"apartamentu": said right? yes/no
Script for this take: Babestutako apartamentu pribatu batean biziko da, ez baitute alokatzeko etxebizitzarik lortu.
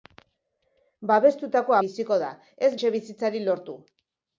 no